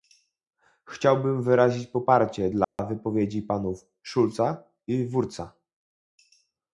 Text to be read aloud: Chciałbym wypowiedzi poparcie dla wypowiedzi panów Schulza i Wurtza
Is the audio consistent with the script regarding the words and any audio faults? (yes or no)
no